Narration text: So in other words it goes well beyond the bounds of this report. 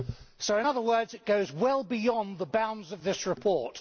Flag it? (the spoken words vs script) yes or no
no